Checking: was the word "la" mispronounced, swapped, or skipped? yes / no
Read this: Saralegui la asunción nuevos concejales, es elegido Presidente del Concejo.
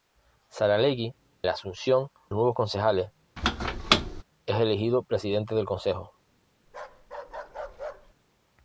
no